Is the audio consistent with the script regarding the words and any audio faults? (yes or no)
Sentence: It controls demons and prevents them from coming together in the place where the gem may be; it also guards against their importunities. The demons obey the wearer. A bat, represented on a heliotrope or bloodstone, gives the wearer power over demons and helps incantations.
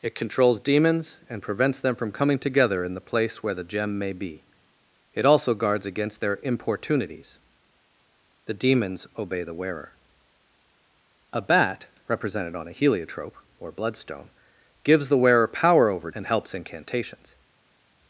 no